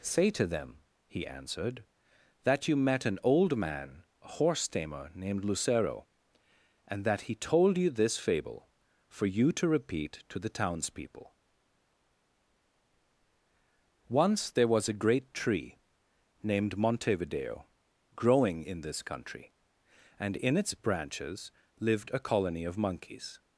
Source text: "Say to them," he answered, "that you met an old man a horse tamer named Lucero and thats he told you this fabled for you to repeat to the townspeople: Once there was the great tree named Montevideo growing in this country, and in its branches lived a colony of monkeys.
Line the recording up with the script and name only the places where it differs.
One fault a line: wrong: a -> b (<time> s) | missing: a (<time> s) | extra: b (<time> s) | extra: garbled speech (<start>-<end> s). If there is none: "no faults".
wrong: thats -> that (7.0 s)
wrong: fabled -> fable (8.2 s)
wrong: the -> a (14.9 s)